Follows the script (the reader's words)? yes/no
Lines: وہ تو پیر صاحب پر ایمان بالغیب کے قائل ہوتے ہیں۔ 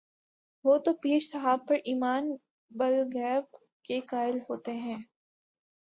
yes